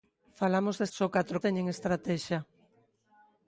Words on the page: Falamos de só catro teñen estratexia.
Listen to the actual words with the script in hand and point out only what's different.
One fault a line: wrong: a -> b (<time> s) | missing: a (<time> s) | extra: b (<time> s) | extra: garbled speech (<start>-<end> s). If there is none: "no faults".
no faults